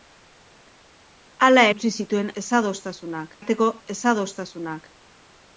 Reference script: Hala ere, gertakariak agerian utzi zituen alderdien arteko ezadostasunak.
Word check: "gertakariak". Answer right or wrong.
wrong